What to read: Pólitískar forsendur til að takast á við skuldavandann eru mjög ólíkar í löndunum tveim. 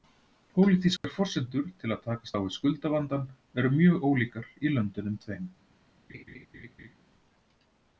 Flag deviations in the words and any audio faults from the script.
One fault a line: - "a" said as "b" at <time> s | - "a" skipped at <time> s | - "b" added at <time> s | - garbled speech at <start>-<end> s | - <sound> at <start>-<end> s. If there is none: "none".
- dropout at 1.0-1.0 s
- laugh at 6.1-7.0 s